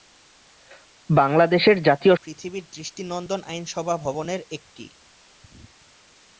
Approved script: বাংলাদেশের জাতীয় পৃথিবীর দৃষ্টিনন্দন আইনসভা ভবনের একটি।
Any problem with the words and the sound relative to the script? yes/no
no